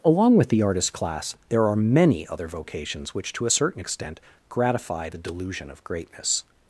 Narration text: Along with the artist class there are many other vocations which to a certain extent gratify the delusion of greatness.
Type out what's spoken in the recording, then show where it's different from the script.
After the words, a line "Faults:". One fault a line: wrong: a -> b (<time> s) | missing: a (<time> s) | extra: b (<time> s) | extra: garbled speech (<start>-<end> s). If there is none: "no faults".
Along with the artist class there are many other vocations which to a certain extent gratify the delusion of greatness.
Faults:
no faults